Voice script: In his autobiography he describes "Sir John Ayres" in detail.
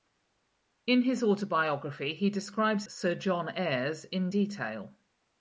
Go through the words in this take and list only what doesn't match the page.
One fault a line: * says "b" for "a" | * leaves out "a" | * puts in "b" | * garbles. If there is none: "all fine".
all fine